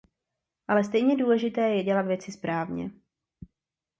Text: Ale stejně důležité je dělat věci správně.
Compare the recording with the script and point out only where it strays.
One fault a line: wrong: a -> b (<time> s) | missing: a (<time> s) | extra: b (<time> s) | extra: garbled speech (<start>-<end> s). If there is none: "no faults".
no faults